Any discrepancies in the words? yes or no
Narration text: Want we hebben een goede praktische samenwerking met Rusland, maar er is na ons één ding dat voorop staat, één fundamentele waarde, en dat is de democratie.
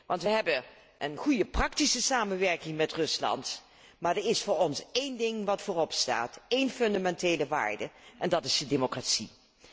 yes